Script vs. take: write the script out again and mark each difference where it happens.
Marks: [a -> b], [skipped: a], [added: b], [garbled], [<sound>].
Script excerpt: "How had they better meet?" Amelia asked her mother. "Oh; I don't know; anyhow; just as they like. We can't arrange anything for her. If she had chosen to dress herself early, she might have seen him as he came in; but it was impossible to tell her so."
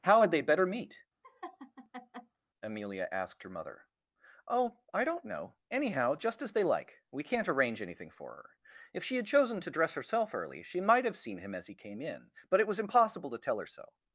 "How had they better meet?" [laugh] Amelia asked her mother. "Oh; I don't know; anyhow; just as they like. We can't arrange anything for her. If she had chosen to dress herself early, she might have seen him as he came in; but it was impossible to tell her so."